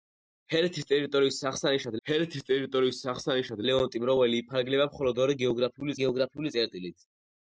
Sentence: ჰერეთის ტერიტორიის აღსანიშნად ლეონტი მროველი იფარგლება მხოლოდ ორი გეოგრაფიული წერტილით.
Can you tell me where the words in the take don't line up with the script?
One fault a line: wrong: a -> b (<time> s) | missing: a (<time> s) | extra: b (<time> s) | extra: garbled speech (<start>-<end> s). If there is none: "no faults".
extra: ჰერეთის ტერიტორიის აღსანიშნად (2.1 s)
extra: გეოგრაფიული (6.0 s)